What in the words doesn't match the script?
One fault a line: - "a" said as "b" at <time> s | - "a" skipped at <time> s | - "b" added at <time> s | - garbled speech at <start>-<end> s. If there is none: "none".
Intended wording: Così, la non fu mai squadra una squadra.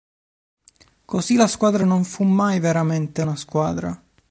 - "squadra" added at 1.4 s
- "squadra" said as "veramente" at 2.6 s